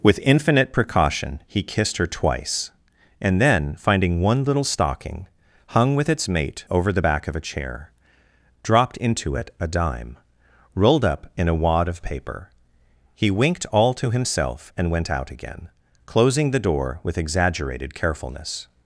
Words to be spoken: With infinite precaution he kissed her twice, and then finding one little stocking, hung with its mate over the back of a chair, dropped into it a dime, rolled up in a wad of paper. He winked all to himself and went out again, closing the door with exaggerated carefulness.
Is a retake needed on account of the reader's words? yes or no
no